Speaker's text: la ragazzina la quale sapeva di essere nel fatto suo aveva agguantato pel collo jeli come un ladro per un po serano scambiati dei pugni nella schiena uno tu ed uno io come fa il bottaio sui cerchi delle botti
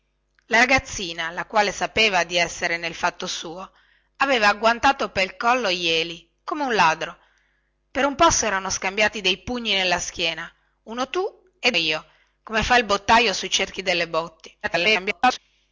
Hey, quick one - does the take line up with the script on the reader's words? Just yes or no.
no